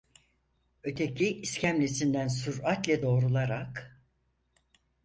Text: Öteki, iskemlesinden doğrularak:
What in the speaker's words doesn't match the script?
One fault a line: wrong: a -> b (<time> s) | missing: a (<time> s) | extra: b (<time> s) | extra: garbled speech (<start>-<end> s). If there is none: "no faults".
extra: süratle (2.3 s)